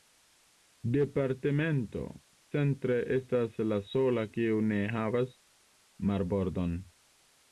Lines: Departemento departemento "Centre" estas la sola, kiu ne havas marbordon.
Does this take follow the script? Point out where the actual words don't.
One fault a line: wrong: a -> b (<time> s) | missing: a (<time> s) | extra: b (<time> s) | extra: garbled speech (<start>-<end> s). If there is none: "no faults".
missing: departemento (2.0 s)